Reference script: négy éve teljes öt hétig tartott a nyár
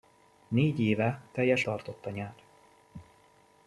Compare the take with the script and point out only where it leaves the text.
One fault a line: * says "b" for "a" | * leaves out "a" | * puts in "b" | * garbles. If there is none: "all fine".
* leaves out "öt hétig"